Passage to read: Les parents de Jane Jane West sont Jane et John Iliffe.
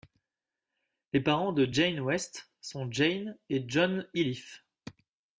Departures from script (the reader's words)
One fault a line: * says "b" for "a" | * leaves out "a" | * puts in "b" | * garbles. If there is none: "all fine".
* leaves out "Jane"